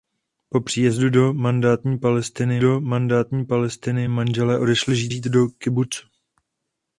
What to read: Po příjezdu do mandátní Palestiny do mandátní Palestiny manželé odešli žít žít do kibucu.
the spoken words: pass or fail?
pass